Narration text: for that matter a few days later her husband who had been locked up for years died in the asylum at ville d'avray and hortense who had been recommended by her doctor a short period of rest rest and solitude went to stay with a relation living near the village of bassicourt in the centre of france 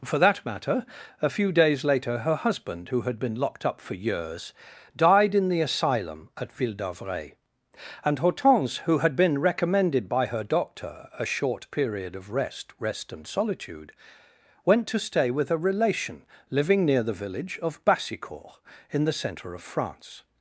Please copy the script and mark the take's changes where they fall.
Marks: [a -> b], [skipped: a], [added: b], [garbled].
for that matter a few days later her husband who had been locked up for years died in the asylum at ville d'avray and hortense who had been recommended by her doctor a short period of rest rest and solitude went to stay with a relation living near the village of bassicourt in the centre of france